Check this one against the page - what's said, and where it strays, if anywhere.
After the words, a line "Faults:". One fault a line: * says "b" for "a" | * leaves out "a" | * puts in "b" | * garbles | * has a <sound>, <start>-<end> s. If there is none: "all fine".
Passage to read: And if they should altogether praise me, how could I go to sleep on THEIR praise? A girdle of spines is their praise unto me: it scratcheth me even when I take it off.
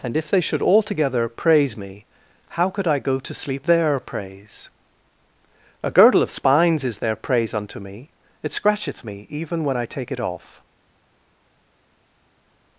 And if they should altogether praise me, how could I go to sleep THEIR praise? A girdle of spines is their praise unto me: it scratcheth me even when I take it off.
Faults:
* leaves out "on"